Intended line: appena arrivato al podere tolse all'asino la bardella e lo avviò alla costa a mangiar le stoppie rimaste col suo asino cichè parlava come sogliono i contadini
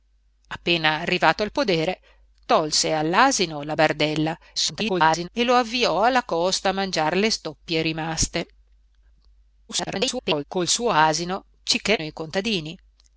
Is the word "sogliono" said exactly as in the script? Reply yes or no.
no